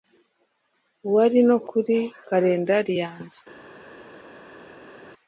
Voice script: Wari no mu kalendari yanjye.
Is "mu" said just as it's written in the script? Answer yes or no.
no